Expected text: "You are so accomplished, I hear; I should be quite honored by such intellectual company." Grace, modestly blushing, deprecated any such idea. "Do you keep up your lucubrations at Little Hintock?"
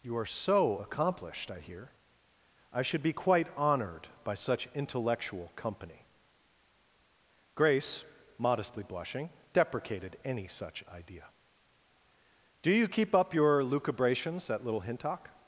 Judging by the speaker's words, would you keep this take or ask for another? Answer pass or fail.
pass